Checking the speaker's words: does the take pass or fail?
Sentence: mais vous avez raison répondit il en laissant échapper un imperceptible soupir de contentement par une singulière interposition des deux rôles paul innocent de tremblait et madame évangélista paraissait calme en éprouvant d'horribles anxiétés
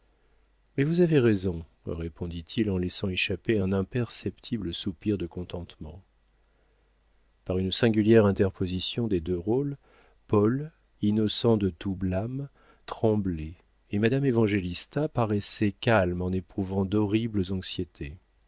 fail